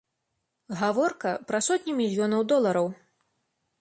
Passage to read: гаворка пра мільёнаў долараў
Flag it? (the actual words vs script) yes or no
yes